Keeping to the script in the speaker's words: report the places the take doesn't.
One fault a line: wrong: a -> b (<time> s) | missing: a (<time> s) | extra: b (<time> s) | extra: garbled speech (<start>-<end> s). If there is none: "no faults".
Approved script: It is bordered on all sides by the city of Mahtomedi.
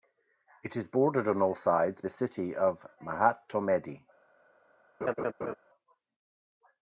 missing: by (2.0 s)